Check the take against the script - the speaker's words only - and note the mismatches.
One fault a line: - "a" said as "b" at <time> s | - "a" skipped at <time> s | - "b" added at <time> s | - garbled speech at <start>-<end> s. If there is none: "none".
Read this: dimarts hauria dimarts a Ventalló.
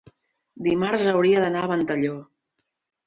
- "dimarts" said as "d'anar" at 1.4 s